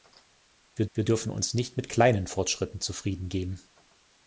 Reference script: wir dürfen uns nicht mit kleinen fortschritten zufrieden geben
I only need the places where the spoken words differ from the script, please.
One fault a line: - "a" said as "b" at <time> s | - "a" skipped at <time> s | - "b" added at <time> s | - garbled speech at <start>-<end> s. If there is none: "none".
- "wir" added at 0.9 s